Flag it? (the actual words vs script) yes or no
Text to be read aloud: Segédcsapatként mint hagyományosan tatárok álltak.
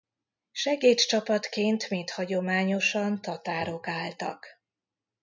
no